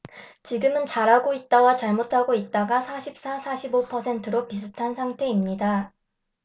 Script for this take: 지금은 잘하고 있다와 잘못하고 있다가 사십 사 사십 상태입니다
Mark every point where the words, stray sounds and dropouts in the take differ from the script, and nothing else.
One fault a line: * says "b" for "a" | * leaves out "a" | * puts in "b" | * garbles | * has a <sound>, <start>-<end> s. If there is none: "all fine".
* puts in "오 퍼센트로 비슷한"